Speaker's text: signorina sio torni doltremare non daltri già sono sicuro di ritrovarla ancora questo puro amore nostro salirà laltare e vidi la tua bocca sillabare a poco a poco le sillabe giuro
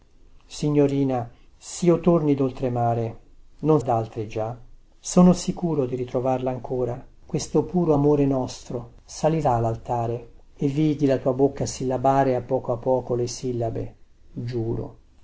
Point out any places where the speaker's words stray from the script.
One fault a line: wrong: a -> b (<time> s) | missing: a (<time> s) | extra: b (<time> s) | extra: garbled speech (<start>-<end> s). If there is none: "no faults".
no faults